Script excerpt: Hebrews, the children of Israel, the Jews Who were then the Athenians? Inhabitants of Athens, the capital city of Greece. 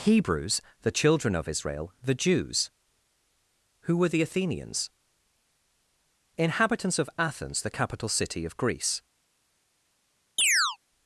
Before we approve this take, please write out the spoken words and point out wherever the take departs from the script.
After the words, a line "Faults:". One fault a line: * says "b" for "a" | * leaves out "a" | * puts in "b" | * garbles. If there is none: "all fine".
Hebrews, the children of Israel, the Jews Who were the Athenians? Inhabitants of Athens, the capital city of Greece.
Faults:
* leaves out "then"